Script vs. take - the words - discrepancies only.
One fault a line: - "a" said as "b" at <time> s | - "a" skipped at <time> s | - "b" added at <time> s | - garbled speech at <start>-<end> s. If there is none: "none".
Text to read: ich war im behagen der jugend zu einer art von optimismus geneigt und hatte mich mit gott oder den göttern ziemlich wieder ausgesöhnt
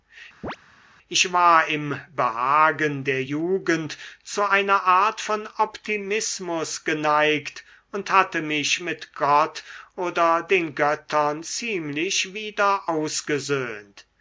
none